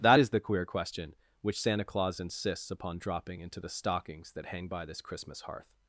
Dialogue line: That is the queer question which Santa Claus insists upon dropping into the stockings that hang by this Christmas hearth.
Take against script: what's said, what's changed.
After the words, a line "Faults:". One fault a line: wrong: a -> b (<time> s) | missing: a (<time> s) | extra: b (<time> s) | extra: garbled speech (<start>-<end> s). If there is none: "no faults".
That is the queer question which Santa Claus insists upon dropping into the stockings that hang by this Christmas hearth.
Faults:
no faults